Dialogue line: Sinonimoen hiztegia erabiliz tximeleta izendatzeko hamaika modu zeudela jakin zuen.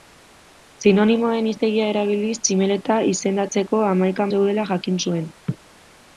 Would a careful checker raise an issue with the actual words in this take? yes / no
yes